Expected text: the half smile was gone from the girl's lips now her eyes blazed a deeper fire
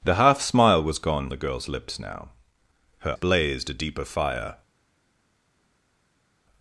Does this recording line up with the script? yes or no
no